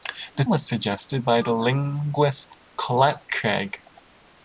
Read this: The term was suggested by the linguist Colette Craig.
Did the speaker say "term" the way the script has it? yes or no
no